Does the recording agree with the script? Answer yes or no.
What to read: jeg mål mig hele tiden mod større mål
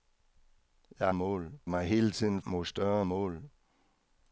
yes